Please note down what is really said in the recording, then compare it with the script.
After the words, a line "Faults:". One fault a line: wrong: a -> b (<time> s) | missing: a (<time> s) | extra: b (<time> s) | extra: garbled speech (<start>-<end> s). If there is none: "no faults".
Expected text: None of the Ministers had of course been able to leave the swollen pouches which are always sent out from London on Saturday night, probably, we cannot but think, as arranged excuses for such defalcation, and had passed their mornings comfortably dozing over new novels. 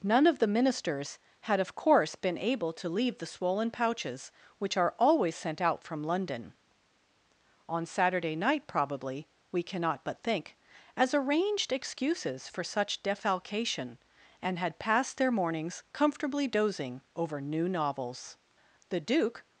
None of the Ministers had of course been able to leave the swollen pouches which are always sent out from London on Saturday night, probably, we cannot but think, as arranged excuses for such defalcation, and had passed their mornings comfortably dozing over new novels. The Duke
Faults:
extra: The Duke (18.9 s)